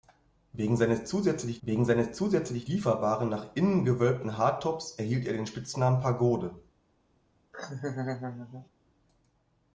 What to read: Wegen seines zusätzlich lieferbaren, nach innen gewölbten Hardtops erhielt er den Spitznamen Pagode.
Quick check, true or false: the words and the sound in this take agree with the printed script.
false